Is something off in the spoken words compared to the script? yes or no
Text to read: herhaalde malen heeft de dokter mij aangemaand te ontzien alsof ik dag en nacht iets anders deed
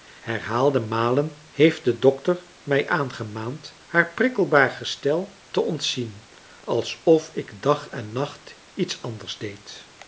yes